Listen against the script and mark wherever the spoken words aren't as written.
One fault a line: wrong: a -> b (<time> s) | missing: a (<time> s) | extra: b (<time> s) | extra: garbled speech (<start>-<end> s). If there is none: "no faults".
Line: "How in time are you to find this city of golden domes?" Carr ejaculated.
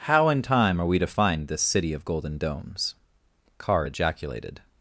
wrong: you -> we (0.8 s)